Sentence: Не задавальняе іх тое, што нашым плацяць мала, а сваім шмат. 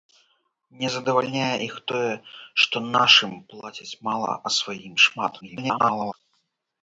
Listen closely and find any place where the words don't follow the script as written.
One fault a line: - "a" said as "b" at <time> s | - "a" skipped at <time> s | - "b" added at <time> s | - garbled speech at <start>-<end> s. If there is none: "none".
- garbled speech at 5.4-6.1 s